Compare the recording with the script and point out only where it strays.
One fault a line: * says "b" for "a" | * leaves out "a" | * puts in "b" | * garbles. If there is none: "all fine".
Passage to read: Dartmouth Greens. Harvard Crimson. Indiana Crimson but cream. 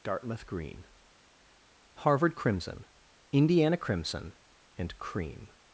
* says "Green" for "Greens"
* says "and" for "but"